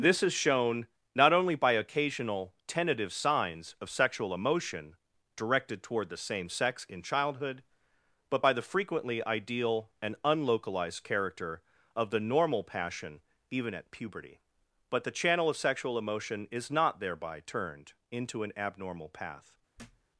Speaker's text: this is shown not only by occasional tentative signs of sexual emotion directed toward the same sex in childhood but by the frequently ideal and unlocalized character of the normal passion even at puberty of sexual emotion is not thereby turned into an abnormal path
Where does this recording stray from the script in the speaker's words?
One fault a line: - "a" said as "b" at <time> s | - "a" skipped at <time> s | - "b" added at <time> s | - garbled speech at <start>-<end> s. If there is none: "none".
- "but the channel" added at 14.9 s